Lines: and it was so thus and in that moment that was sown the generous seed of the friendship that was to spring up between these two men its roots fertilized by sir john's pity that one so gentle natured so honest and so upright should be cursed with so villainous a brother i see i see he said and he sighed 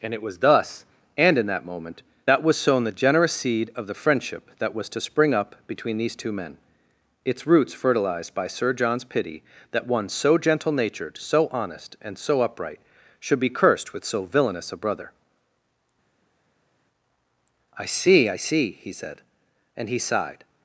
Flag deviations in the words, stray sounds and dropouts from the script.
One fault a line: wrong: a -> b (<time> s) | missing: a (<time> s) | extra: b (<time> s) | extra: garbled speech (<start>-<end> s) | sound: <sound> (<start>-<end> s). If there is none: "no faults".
missing: so (0.4 s)